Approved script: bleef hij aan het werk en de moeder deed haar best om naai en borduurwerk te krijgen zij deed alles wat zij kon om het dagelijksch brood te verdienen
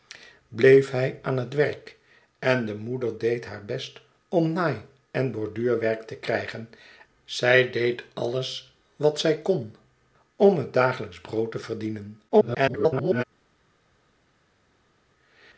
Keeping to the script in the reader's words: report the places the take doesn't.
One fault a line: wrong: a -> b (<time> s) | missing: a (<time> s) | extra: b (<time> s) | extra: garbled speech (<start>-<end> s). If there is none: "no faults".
extra: garbled speech (12.3-13.2 s)